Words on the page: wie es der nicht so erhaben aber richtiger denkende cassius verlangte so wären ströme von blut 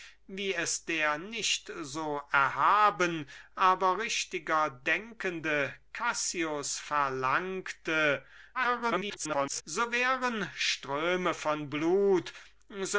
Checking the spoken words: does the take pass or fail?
fail